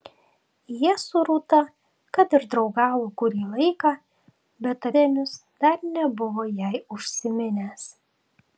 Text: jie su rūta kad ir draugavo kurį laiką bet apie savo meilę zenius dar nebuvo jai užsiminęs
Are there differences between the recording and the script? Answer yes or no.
yes